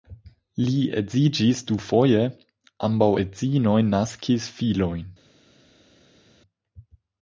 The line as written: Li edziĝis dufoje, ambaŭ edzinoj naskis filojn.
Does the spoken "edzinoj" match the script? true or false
true